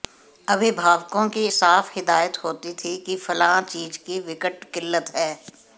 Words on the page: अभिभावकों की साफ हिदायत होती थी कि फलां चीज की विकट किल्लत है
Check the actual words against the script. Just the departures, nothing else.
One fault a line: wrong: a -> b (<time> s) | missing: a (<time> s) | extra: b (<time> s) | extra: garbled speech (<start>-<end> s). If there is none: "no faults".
no faults